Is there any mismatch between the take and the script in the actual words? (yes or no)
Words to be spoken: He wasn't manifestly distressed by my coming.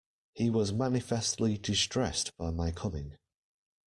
yes